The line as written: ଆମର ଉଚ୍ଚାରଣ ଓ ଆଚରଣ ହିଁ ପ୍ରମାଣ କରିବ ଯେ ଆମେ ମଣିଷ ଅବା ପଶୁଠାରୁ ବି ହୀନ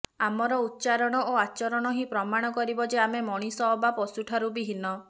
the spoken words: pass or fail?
pass